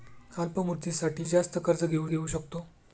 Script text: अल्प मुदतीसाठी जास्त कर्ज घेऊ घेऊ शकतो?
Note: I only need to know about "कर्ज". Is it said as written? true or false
true